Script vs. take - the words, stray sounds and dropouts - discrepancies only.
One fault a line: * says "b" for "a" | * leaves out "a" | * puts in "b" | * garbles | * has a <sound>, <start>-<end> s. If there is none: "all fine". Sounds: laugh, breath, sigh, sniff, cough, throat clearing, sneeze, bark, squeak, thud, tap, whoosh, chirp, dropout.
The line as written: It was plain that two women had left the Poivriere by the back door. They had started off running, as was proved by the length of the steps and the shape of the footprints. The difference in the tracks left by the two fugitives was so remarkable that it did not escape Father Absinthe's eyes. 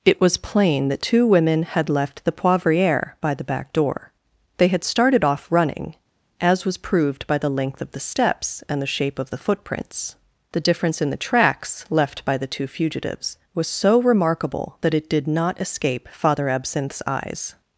all fine